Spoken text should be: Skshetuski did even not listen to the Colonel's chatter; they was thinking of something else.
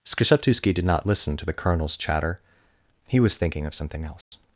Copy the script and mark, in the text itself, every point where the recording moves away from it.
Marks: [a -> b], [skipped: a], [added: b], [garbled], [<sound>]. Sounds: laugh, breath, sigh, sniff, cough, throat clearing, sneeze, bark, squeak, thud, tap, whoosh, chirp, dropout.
Skshetuski did [skipped: even] not listen to the Colonel's chatter; [they -> he] was thinking of something else. [dropout]